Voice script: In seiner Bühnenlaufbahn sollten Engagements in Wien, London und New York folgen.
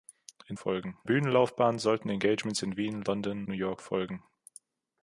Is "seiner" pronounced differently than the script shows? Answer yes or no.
yes